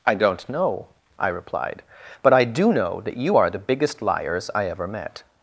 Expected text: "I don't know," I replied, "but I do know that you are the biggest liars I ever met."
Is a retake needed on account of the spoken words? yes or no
no